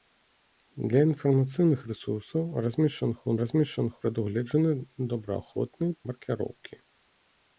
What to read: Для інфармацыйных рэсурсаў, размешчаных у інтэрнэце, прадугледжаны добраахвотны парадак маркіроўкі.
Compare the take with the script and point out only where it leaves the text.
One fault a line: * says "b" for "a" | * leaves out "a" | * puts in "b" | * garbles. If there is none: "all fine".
* says "размешчаных" for "інтэрнэце"
* leaves out "парадак"